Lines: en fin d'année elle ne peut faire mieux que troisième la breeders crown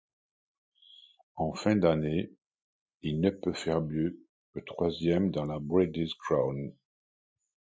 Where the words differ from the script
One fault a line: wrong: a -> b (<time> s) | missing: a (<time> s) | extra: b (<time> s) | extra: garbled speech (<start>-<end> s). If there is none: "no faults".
wrong: elle -> il (3.0 s)
extra: dans (5.3 s)